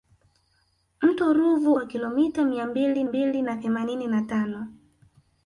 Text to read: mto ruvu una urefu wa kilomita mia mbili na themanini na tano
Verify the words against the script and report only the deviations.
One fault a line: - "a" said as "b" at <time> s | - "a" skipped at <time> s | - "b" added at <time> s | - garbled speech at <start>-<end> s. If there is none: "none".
- "una urefu" skipped at 1.7 s
- "mbili" added at 3.0 s